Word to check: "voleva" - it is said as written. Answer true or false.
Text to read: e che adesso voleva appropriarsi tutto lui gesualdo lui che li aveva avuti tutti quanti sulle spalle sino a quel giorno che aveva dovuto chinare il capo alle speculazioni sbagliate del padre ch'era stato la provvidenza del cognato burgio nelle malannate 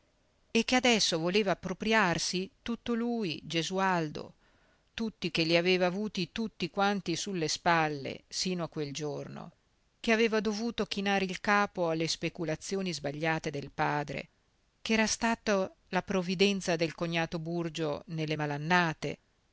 true